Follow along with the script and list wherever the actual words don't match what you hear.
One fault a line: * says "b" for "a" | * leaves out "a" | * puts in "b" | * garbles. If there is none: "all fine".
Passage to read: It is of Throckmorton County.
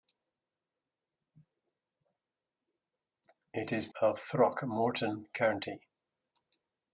all fine